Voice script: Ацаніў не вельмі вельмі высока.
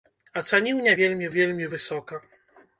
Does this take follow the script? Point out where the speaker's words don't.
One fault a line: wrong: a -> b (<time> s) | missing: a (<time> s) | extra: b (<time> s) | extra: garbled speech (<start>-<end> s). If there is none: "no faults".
no faults